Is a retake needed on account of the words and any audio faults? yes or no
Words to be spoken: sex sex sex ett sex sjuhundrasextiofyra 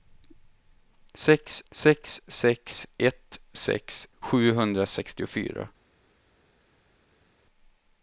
no